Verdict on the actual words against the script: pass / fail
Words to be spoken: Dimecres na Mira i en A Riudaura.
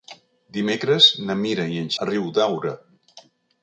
pass